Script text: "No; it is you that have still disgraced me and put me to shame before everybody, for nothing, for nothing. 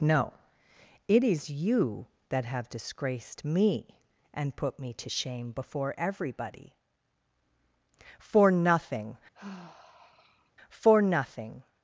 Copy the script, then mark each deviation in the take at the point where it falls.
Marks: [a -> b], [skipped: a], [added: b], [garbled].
"No; it is you that have [skipped: still] disgraced me and put me to shame before everybody, for nothing, for nothing.